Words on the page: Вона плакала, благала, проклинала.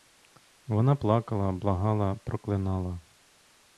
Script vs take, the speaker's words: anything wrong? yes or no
no